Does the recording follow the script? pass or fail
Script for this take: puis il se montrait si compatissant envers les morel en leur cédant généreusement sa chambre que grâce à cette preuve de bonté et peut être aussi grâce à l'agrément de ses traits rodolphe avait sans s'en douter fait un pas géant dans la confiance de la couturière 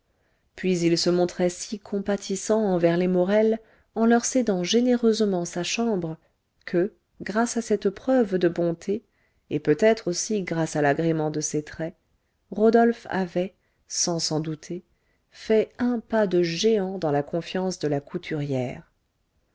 fail